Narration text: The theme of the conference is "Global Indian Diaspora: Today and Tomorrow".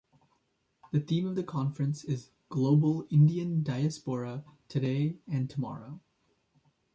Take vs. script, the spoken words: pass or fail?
pass